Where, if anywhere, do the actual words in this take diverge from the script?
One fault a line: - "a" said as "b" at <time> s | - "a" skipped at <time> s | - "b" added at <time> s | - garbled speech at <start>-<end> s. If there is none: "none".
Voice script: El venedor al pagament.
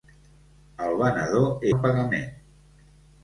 none